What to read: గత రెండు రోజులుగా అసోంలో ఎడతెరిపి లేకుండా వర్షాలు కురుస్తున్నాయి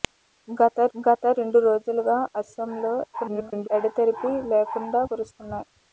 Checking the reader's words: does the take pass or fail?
fail